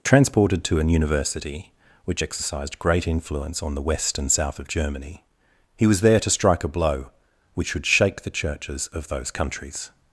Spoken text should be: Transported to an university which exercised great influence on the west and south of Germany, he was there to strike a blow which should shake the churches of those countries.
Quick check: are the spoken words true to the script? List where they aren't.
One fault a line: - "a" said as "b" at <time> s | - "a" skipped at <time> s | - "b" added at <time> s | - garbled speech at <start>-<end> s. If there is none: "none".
none